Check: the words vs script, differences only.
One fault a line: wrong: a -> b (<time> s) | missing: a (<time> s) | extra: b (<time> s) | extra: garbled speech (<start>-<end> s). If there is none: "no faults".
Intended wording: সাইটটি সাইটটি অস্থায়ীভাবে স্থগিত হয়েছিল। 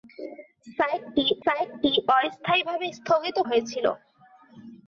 no faults